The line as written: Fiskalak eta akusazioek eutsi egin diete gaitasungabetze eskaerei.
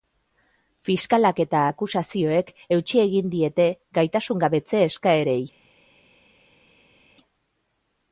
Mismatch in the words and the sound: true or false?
false